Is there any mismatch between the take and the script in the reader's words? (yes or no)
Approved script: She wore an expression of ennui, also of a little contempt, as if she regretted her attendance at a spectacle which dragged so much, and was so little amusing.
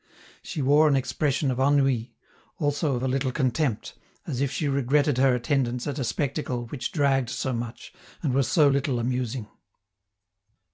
no